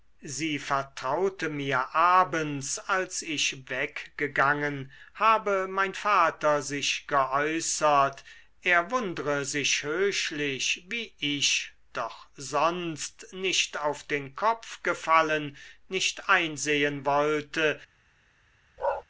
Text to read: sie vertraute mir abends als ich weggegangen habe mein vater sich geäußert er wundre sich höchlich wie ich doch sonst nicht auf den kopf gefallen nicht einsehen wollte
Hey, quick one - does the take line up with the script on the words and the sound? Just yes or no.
no